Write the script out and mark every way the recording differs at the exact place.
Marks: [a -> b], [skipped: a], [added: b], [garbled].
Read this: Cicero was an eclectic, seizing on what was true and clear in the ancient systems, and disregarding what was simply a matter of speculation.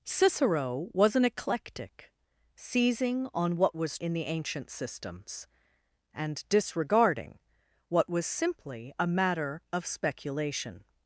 Cicero was an eclectic, seizing on what was [skipped: true and clear] in the ancient systems, and disregarding what was simply a matter of speculation.